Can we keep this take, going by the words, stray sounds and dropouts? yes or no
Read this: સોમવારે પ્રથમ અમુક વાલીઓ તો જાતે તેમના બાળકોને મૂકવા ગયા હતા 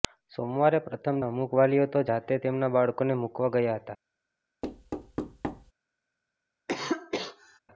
no